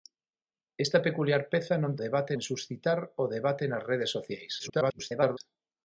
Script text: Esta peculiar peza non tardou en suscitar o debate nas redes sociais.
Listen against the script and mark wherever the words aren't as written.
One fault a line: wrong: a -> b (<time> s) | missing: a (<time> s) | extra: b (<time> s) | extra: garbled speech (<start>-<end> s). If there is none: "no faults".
wrong: tardou -> debate (2.0 s)
extra: garbled speech (4.6-5.4 s)